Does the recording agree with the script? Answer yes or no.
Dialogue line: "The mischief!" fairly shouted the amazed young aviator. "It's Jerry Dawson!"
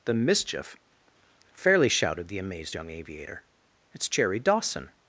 yes